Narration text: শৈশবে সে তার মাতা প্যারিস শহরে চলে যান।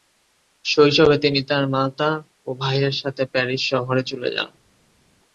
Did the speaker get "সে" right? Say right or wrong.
wrong